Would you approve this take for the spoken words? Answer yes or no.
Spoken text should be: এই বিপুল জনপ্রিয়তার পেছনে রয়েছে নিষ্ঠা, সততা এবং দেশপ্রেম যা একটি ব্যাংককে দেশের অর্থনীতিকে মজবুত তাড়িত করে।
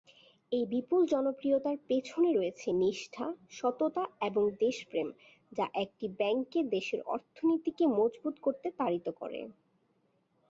no